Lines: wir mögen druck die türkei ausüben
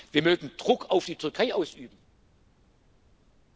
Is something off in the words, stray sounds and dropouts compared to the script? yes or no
yes